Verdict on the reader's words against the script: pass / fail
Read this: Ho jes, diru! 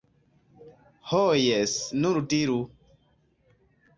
fail